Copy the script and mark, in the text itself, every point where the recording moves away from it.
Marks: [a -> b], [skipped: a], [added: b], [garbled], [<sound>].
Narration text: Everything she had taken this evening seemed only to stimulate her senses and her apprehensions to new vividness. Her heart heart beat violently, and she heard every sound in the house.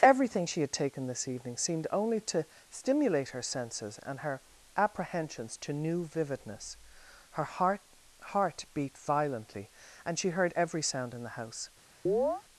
Everything she had taken this evening seemed only to stimulate her senses and her apprehensions to new vividness. Her heart heart beat violently, and she heard every sound in the house. [chirp]